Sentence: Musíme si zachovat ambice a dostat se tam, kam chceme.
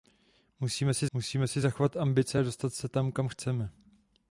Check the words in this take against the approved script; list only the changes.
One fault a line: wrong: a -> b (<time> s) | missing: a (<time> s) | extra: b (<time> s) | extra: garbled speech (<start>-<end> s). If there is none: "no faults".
extra: musíme si (1.1 s)